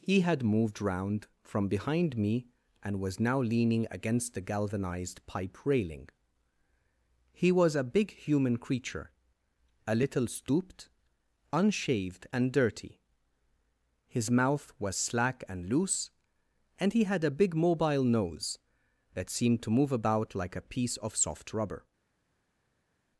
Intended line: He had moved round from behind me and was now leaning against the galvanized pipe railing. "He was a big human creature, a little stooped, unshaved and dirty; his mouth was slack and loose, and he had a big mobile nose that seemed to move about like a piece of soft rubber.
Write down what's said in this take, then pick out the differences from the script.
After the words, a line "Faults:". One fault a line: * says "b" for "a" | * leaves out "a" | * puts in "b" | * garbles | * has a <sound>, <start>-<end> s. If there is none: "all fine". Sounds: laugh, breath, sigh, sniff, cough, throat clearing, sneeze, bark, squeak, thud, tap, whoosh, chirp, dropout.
He had moved round from behind me and was now leaning against the galvanized pipe railing. "He was a big human creature, a little stooped, unshaved and dirty; his mouth was slack and loose, and he had a big mobile nose that seemed to move about like a piece of soft rubber.
Faults:
all fine